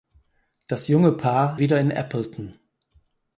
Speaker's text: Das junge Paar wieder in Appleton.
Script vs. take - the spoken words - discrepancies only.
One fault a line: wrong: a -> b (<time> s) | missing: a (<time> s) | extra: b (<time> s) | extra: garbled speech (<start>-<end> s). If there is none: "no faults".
no faults